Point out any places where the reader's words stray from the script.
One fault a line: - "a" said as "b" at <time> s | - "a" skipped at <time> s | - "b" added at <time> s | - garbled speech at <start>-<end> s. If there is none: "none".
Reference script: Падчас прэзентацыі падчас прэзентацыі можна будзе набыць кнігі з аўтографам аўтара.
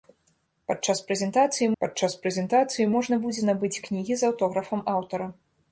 none